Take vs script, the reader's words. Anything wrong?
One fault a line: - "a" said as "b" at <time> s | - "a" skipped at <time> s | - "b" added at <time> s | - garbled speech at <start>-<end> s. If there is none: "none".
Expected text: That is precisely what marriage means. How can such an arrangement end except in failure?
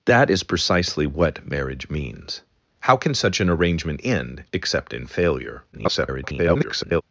- garbled speech at 5.7-7.0 s